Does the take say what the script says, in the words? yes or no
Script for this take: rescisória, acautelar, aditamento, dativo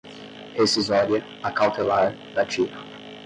no